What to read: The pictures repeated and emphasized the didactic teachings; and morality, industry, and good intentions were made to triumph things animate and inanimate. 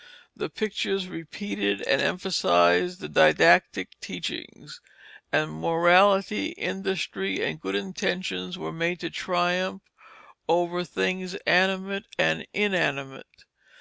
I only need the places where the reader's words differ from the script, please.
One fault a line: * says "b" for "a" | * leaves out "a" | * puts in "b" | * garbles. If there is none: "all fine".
* puts in "over"